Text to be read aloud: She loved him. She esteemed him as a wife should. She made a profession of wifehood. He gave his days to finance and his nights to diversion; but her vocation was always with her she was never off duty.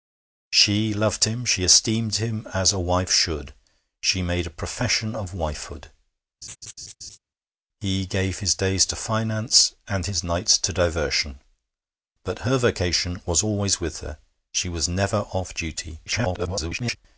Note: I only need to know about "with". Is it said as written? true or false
true